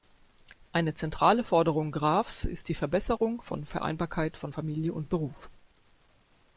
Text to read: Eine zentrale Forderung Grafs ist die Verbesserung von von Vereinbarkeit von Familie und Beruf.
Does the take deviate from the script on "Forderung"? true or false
false